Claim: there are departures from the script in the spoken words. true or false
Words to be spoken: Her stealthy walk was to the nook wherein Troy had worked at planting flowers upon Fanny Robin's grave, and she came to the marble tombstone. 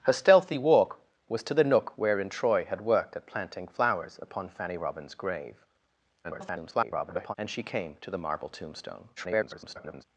true